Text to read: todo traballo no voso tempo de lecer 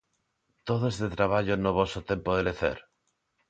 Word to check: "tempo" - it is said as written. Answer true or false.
true